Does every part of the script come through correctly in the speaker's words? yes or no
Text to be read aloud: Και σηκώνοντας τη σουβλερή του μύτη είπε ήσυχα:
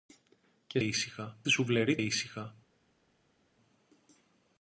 no